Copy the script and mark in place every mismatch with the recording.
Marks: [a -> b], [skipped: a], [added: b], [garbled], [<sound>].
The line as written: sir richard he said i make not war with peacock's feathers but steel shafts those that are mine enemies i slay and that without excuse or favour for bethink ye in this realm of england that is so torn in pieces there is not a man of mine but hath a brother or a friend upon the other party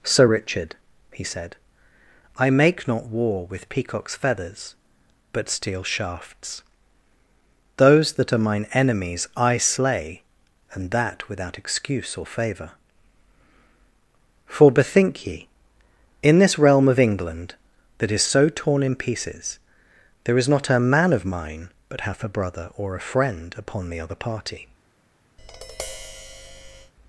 sir richard he said i make not war with peacock's feathers but steel shafts those that are mine enemies i slay and that without excuse or favour for bethink ye in this realm of england that is so torn in pieces there is not a man of mine but hath a brother or a friend upon the other party [tap]